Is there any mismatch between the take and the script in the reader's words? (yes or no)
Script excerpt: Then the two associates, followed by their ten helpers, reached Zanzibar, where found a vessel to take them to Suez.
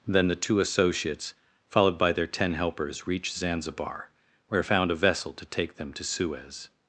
no